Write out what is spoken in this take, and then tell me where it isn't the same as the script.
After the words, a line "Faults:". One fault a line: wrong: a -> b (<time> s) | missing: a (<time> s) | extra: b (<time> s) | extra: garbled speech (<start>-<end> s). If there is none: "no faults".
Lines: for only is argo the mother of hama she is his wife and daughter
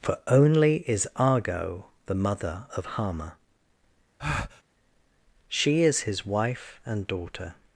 for only is argo the mother of hama she is his wife and daughter
Faults:
no faults